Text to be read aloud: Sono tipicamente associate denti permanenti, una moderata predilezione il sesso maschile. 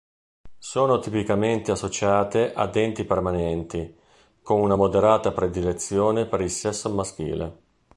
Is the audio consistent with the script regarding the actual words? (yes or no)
no